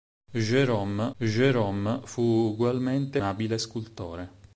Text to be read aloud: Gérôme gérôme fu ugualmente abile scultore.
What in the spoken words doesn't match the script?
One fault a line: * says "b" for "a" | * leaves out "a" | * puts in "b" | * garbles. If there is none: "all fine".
all fine